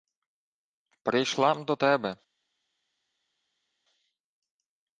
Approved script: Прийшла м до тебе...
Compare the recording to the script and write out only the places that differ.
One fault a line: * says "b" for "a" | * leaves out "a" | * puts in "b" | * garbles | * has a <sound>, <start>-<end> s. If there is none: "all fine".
all fine